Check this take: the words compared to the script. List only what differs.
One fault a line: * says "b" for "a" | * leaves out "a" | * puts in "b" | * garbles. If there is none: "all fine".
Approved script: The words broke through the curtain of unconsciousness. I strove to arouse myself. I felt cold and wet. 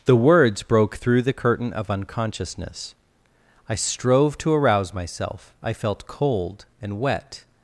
all fine